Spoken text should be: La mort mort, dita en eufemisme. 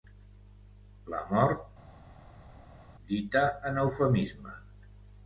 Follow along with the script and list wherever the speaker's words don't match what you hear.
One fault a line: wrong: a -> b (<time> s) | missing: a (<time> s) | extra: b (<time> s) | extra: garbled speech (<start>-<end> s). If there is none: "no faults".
missing: mort (1.6 s)